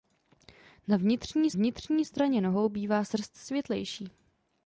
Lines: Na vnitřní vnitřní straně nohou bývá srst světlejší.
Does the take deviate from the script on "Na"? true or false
false